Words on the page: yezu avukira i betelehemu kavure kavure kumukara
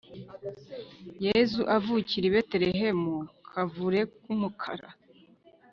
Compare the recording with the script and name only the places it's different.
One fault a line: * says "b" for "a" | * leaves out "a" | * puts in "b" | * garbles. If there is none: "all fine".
* leaves out "kavure"